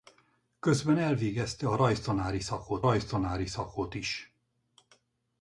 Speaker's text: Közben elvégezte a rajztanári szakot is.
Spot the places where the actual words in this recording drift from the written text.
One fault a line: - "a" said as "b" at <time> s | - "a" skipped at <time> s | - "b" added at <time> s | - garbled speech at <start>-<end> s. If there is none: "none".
- "rajztanári szakot" added at 2.8 s